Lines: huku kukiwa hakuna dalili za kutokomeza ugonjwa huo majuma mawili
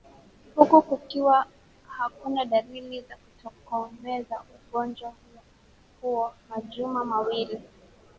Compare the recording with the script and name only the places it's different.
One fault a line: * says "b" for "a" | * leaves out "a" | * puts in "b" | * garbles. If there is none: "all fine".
all fine